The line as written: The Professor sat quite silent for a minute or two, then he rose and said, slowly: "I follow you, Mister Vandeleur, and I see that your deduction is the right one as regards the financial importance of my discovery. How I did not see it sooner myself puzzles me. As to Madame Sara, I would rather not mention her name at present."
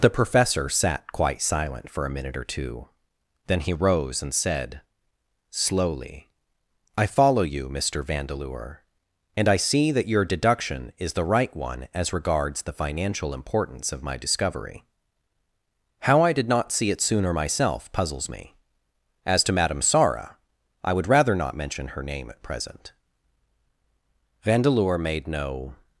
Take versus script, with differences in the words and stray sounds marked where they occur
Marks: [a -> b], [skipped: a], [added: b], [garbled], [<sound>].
The Professor sat quite silent for a minute or two, then he rose and said, slowly: "I follow you, Mister Vandeleur, and I see that your deduction is the right one as regards the financial importance of my discovery. How I did not see it sooner myself puzzles me. As to Madame Sara, I would rather not mention her name at present." [added: Vandeleur made no]